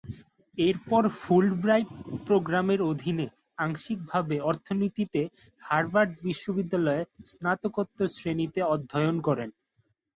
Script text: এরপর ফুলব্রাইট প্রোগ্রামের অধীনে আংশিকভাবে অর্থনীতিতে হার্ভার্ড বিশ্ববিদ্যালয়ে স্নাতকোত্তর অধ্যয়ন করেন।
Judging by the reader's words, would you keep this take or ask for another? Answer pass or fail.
fail